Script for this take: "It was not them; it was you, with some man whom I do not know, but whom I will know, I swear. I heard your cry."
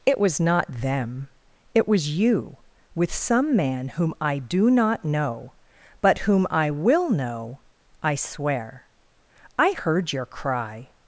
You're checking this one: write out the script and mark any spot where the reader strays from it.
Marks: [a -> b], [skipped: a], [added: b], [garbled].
"It was not them; it was you, with some man whom I do not know, but whom I will know, I swear. I heard your cry."